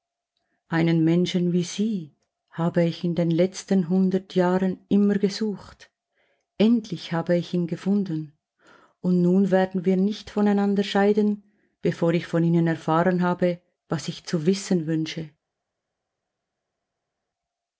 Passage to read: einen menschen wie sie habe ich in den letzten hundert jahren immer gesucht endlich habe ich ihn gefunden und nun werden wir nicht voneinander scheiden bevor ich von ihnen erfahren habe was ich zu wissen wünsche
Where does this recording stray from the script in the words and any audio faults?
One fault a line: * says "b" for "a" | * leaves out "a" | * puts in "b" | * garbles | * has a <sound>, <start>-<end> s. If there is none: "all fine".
all fine